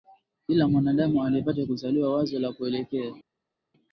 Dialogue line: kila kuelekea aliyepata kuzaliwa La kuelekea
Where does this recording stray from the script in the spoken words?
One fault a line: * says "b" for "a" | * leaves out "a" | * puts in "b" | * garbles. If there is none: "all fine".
* says "mwanadamu" for "kuelekea"
* puts in "Wazo"